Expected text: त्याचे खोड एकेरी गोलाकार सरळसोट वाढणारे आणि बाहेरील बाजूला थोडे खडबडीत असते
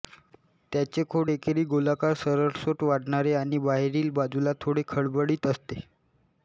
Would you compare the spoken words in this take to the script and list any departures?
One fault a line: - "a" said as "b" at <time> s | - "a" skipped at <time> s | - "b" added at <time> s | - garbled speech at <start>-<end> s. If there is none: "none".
none